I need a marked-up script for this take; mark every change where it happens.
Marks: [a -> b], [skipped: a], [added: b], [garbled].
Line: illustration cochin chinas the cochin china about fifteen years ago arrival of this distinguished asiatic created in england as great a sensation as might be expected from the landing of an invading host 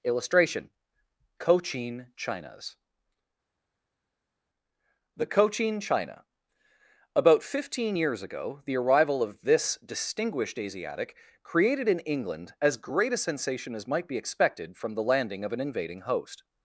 illustration cochin chinas the cochin china about fifteen years ago [added: the] arrival of this distinguished asiatic created in england as great a sensation as might be expected from the landing of an invading host